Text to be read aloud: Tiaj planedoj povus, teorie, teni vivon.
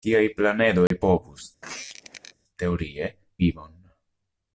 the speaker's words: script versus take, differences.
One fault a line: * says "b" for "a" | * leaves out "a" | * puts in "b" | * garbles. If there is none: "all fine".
* leaves out "teni"